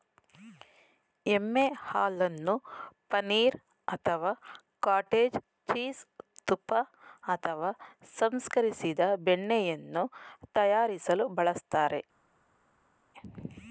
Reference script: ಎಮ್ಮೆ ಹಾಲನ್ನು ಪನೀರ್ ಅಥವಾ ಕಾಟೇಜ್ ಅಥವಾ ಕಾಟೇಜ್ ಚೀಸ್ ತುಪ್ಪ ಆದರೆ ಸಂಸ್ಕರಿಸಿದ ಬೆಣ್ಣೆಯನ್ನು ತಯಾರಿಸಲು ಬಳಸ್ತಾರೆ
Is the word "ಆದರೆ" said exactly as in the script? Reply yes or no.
no